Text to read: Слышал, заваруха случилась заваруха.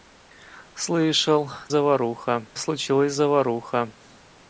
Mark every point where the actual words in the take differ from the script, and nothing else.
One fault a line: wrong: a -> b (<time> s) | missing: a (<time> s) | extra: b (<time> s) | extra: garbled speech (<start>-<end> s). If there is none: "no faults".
no faults